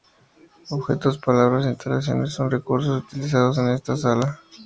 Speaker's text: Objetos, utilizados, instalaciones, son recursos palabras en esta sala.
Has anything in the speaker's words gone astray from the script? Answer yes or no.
yes